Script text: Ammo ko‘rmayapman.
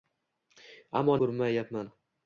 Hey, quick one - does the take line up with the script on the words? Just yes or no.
yes